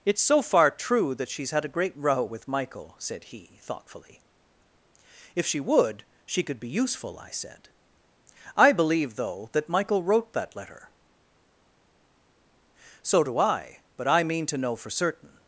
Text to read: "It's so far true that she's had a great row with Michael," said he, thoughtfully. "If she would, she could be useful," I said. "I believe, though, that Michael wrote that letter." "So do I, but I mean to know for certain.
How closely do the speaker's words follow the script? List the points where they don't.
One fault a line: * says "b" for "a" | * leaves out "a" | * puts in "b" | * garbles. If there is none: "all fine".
all fine